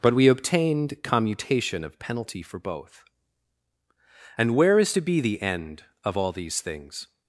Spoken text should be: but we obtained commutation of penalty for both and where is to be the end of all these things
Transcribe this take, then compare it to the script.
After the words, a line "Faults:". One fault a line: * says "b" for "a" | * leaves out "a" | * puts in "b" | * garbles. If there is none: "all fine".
but we obtained commutation of penalty for both and where is to be the end of all these things
Faults:
all fine